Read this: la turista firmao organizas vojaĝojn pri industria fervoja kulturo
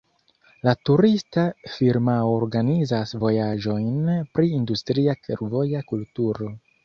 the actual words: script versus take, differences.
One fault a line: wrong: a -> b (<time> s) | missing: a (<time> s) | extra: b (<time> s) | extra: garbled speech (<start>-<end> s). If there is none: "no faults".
no faults